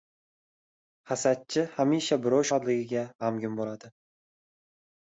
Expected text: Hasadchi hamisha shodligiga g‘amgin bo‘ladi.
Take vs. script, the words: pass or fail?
fail